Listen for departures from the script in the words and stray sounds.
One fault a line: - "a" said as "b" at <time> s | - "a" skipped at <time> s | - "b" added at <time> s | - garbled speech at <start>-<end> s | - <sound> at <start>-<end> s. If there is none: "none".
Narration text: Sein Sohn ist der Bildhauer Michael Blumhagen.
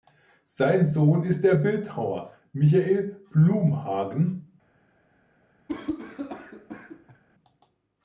- cough at 5.7-7.2 s